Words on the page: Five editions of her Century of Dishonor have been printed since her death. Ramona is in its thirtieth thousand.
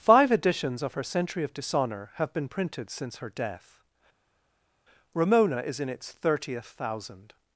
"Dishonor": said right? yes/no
yes